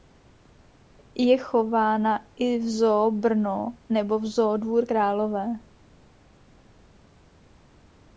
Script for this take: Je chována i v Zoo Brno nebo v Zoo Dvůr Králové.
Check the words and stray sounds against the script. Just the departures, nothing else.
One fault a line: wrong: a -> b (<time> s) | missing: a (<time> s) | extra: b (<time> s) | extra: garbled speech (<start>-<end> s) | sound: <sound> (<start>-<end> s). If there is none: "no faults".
no faults